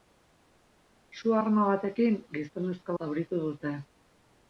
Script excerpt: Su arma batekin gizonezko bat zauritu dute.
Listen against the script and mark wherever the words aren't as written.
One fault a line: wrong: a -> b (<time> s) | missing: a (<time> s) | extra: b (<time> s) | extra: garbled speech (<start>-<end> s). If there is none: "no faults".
missing: bat (3.0 s)